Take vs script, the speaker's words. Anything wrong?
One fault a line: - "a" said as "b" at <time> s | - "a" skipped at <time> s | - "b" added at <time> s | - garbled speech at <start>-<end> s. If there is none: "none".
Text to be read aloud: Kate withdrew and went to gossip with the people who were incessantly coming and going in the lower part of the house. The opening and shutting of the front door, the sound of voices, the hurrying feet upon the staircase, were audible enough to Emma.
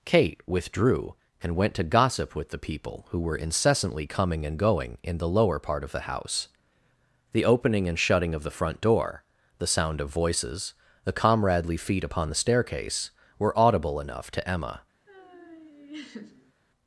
- "hurrying" said as "comradely" at 11.1 s